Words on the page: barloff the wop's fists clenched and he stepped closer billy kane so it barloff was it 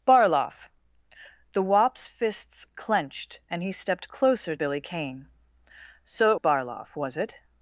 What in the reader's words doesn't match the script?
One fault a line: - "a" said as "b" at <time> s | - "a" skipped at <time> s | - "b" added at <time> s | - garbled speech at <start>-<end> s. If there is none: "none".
none